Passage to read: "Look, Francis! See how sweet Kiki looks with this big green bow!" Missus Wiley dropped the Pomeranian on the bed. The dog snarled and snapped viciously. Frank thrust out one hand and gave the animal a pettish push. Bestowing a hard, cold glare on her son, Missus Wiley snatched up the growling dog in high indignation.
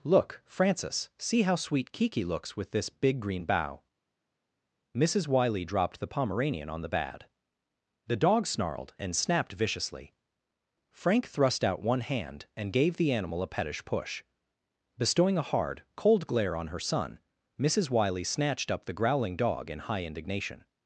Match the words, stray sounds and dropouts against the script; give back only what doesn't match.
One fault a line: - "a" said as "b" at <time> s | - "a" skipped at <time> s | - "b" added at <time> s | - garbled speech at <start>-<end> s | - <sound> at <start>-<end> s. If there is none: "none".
- "bed" said as "bad" at 6.9 s